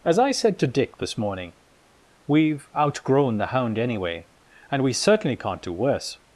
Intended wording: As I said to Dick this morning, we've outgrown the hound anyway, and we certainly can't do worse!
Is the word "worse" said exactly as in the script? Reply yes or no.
yes